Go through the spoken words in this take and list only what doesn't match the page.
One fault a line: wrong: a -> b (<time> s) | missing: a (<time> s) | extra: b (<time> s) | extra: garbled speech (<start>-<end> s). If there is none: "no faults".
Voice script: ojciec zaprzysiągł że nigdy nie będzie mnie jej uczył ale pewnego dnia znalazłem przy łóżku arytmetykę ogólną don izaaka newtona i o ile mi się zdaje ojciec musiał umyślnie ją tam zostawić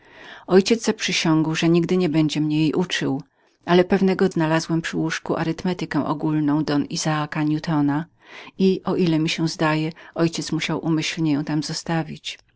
missing: dnia (4.3 s)